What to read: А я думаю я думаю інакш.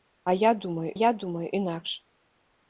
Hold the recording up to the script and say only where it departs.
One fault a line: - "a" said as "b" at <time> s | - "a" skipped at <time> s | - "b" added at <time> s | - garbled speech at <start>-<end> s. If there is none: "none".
none